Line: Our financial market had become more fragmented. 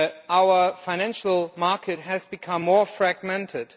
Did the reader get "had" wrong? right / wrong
wrong